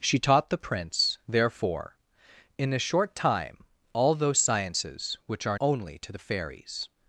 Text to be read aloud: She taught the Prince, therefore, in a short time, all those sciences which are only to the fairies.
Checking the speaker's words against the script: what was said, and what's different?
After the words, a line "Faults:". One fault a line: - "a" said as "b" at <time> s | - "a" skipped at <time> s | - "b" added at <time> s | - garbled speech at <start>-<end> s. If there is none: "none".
She taught the Prince, therefore, in a short time, all those sciences which are only to the fairies.
Faults:
none